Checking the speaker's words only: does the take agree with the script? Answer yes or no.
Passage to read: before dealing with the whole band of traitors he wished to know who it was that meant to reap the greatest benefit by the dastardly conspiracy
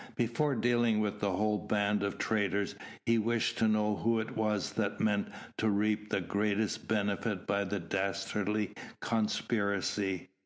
yes